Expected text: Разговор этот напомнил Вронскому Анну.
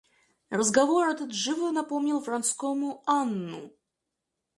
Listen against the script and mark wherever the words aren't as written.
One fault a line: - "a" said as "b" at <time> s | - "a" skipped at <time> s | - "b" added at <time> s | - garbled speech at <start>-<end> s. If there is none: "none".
- "живо" added at 1.3 s